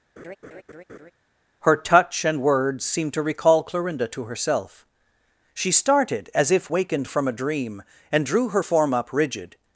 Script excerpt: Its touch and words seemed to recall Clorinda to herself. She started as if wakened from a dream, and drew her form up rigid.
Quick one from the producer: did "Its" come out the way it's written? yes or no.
no